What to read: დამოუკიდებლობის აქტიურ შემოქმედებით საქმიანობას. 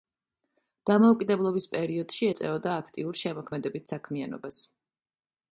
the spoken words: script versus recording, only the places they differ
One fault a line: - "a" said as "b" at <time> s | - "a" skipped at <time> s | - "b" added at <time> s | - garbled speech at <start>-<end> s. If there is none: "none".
- "პერიოდში ეწეოდა" added at 1.8 s